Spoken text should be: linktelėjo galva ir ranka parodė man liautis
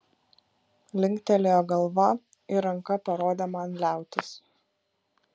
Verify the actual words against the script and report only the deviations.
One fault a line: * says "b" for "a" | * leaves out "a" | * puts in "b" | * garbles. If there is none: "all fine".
all fine